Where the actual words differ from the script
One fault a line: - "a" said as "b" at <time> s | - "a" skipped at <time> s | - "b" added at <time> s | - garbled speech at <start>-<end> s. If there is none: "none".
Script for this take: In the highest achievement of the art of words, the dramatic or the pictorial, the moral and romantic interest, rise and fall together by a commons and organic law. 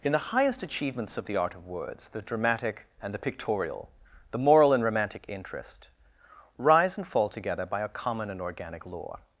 - "achievement" said as "achievements" at 0.6 s
- "or" said as "and" at 3.0 s
- "commons" said as "common" at 7.9 s